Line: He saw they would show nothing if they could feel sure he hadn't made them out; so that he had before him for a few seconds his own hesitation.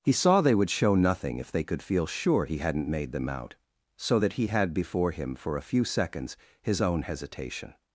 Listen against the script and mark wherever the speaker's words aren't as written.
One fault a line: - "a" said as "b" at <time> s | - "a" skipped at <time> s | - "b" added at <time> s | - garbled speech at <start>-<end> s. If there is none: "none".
none